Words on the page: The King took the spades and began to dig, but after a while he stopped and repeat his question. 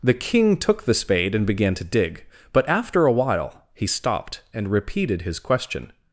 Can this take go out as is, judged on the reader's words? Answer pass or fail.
fail